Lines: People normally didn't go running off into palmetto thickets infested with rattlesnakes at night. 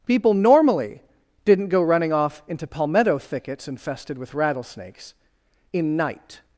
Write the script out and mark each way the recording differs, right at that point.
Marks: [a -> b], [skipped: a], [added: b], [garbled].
People normally didn't go running off into palmetto thickets infested with rattlesnakes [at -> in] night.